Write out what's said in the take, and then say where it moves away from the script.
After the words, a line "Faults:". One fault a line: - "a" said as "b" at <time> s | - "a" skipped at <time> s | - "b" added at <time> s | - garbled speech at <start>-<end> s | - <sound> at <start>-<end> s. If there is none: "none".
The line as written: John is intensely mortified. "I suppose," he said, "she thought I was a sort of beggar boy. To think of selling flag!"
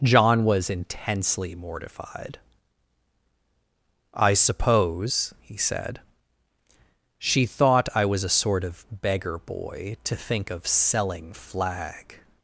John was intensely mortified. "I suppose," he said, "she thought I was a sort of beggar boy. To think of selling flag!"
Faults:
- "is" said as "was" at 0.5 s